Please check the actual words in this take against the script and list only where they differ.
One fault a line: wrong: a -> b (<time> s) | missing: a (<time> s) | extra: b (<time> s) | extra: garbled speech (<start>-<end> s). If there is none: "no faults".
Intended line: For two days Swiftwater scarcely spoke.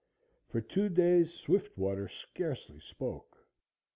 no faults